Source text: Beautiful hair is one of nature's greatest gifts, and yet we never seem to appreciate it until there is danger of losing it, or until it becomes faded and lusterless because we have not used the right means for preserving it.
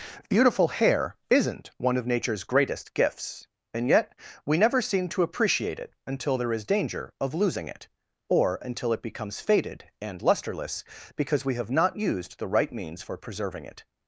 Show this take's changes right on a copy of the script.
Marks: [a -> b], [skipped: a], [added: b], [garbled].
Beautiful hair [is -> isn't] one of nature's greatest gifts, and yet we never seem to appreciate it until there is danger of losing it, or until it becomes faded and lusterless because we have not used the right means for preserving it.